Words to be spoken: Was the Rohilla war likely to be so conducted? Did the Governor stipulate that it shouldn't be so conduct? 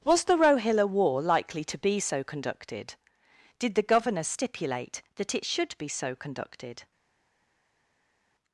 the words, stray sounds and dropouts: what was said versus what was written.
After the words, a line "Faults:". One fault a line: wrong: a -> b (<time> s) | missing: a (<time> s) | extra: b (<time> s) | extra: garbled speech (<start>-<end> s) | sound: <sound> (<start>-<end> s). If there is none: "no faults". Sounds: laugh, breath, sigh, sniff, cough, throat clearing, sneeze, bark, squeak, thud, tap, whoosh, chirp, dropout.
Was the Rohilla war likely to be so conducted? Did the Governor stipulate that it should be so conducted?
Faults:
wrong: shouldn't -> should (5.5 s)
wrong: conduct -> conducted (6.2 s)